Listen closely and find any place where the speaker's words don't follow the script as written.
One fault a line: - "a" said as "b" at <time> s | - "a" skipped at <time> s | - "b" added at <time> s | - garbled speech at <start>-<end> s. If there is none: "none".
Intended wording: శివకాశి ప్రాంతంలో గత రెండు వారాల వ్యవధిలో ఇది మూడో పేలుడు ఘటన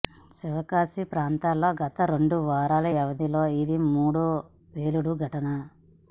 none